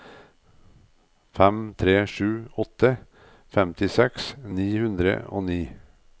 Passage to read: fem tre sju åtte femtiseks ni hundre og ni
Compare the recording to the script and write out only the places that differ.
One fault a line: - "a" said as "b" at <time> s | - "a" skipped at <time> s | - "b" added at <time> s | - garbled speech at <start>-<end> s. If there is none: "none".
none